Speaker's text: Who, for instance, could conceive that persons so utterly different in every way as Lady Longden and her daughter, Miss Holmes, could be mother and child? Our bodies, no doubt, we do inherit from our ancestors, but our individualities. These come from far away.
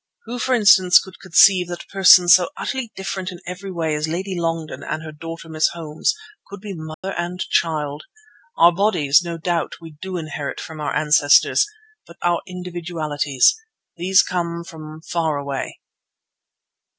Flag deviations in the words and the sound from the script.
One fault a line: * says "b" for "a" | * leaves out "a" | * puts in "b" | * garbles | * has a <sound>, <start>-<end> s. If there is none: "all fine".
* has a dropout, 6.9-7.0 s